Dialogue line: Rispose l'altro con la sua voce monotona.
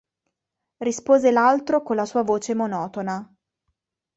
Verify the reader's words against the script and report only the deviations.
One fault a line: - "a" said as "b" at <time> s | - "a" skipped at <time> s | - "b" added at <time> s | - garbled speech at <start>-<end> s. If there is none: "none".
none